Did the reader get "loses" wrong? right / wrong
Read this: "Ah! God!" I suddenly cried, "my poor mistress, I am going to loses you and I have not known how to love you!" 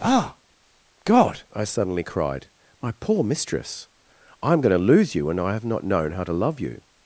wrong